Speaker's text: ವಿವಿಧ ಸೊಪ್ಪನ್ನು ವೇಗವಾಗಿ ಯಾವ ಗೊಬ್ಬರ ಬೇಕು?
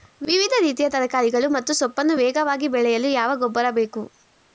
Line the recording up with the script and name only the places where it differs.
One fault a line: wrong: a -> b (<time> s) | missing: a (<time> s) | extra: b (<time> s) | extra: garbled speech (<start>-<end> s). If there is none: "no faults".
extra: ರೀತಿಯ ತರಕಾರಿಗಳು ಮತ್ತು (0.6 s)
extra: ಬೆಳೆಯಲು (2.7 s)